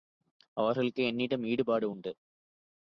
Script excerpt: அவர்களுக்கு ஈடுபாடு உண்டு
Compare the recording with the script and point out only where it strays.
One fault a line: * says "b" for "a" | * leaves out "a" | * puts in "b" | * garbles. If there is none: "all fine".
* puts in "என்னிடம்"